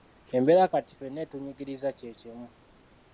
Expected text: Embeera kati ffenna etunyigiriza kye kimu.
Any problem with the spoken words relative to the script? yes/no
no